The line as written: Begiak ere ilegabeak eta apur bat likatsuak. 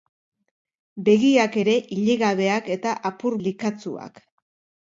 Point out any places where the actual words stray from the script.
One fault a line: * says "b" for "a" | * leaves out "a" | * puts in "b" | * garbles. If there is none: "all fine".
* leaves out "bat"